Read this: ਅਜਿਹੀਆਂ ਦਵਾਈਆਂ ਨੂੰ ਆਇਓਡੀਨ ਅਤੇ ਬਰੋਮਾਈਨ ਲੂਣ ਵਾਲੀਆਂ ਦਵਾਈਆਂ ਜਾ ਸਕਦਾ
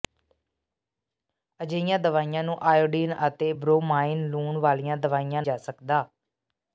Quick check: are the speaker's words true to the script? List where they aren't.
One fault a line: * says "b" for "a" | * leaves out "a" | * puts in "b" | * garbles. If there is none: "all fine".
all fine